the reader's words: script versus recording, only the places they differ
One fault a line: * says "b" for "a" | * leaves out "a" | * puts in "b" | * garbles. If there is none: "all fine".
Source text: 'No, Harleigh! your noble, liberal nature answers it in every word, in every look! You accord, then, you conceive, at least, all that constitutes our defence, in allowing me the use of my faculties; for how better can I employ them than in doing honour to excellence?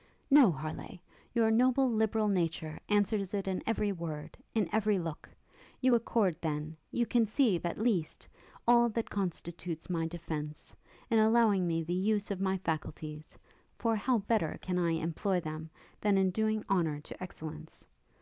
* says "my" for "our"